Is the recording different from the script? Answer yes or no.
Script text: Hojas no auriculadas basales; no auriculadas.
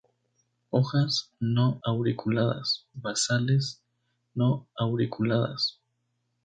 no